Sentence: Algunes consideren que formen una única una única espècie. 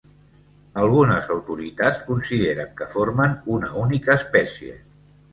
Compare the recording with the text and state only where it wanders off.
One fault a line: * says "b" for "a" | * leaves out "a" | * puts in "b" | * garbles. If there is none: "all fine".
* puts in "autoritats"
* leaves out "una única"